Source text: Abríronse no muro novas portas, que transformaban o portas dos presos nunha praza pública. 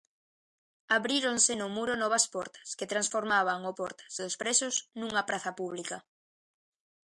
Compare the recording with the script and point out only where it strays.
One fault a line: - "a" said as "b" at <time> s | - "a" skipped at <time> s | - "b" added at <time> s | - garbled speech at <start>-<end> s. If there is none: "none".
none